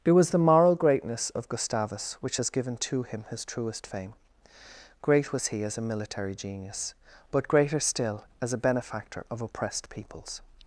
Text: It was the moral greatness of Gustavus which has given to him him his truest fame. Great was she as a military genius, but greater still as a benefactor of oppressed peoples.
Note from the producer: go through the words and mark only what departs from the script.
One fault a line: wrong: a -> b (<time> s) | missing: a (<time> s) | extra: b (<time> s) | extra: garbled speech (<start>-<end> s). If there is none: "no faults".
missing: him (3.3 s)
wrong: she -> he (5.5 s)